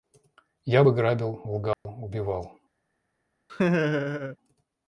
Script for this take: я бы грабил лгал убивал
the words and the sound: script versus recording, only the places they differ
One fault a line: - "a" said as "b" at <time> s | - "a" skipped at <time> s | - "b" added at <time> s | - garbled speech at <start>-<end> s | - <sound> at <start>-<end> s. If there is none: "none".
- dropout at 1.7-1.9 s
- laugh at 3.5-4.4 s